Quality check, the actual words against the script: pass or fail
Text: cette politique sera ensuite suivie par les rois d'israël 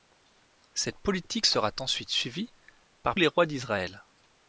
pass